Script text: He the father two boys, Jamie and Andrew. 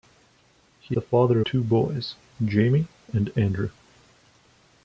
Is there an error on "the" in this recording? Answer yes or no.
no